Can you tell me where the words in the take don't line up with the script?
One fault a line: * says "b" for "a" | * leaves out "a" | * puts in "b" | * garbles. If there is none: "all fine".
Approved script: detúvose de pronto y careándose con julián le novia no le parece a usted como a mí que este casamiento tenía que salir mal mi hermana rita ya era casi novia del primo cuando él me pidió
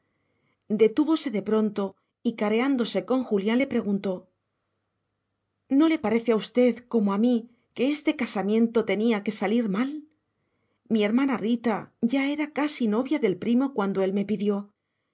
* says "preguntó" for "novia"